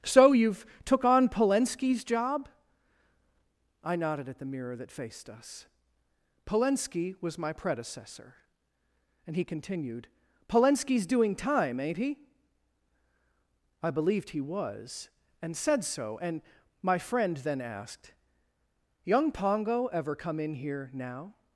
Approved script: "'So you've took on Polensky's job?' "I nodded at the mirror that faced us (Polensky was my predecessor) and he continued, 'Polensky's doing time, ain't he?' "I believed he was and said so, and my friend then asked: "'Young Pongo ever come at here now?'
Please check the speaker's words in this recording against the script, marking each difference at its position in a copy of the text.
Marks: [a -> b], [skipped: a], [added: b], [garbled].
"'So you've took on Polensky's job?' "I nodded at the mirror that faced us (Polensky was my predecessor) and he continued, 'Polensky's doing time, ain't he?' "I believed he was and said so, and my friend then asked: "'Young Pongo ever come [at -> in] here now?'